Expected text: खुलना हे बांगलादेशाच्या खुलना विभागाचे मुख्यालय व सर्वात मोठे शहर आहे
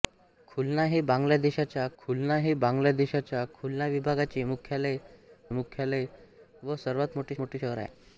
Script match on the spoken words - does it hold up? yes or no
no